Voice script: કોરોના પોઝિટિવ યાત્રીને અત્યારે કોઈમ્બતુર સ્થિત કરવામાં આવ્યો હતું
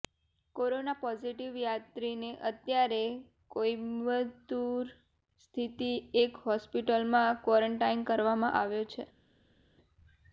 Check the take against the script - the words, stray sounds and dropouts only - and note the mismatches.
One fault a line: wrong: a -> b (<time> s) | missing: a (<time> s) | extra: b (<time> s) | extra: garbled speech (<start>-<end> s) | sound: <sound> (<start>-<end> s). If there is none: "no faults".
extra: એક હોસ્પિટલમાં ક્વોરન્ટાઈન (6.2 s)
wrong: હતું -> છે (8.9 s)